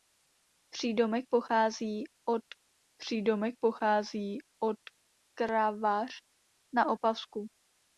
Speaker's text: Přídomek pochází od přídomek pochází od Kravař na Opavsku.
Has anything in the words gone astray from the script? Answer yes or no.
no